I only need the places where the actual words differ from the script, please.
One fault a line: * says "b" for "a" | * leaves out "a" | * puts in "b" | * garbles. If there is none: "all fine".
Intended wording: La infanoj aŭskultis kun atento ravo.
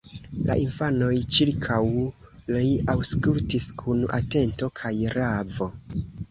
* puts in "ĉirkaŭ li"
* puts in "kaj"